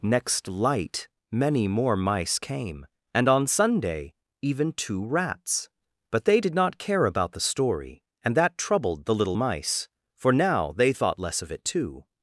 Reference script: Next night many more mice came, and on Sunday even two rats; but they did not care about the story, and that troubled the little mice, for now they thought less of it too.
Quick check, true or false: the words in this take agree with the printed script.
false